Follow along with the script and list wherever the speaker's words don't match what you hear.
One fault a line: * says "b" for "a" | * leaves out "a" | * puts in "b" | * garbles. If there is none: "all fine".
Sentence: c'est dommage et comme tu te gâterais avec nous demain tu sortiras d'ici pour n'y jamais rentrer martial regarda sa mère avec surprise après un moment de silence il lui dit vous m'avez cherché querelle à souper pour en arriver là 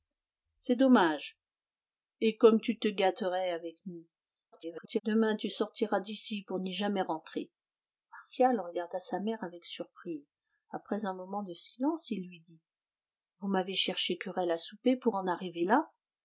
* garbles